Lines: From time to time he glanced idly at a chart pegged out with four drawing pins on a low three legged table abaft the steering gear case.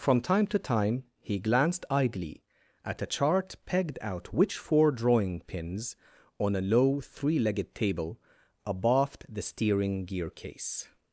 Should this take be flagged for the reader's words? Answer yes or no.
yes